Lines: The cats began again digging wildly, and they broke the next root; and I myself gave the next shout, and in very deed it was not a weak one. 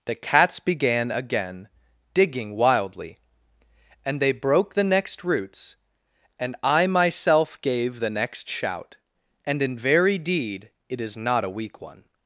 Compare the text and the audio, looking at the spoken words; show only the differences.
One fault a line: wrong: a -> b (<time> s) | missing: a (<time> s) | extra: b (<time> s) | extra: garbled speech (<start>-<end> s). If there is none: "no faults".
wrong: root -> roots (5.2 s)
wrong: was -> is (11.0 s)